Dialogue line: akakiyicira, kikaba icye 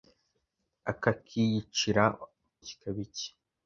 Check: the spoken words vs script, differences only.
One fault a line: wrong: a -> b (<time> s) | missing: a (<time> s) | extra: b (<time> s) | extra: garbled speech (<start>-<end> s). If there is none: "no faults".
no faults